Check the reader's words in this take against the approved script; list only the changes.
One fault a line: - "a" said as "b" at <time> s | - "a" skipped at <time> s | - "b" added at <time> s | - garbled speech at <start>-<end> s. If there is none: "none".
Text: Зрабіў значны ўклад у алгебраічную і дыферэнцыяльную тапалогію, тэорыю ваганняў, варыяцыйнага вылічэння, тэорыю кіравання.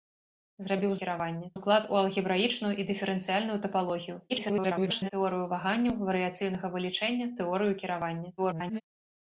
- "значны" said as "кіравання" at 1.0 s
- garbled speech at 4.3-5.1 s
- garbled speech at 8.4-8.8 s